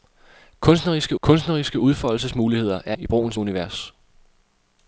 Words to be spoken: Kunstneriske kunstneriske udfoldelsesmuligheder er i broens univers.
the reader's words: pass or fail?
pass